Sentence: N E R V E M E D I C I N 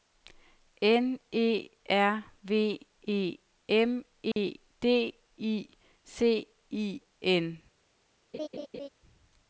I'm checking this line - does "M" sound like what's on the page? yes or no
yes